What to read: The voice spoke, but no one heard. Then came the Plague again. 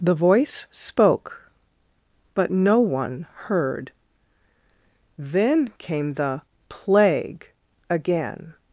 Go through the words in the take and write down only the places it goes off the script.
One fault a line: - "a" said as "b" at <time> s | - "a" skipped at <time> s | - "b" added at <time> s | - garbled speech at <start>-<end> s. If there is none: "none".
none